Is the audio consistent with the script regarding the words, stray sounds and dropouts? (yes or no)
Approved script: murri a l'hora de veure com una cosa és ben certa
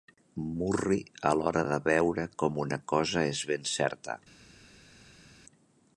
yes